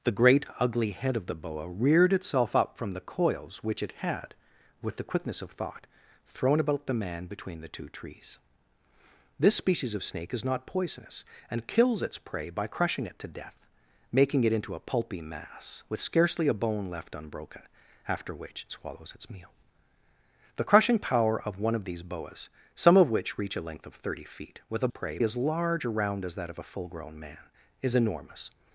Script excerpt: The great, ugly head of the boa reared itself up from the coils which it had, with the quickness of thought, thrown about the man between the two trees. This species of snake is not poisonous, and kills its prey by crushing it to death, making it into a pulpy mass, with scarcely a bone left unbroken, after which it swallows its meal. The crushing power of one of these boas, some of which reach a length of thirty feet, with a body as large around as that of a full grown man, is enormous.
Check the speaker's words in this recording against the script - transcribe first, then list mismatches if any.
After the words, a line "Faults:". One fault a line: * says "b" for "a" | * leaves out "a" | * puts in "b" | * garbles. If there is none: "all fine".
The great, ugly head of the boa reared itself up from the coils which it had, with the quickness of thought, thrown about the man between the two trees. This species of snake is not poisonous, and kills its prey by crushing it to death, making it into a pulpy mass, with scarcely a bone left unbroken, after which it swallows its meal. The crushing power of one of these boas, some of which reach a length of thirty feet, with a prey as large around as that of a full grown man, is enormous.
Faults:
* says "prey" for "body"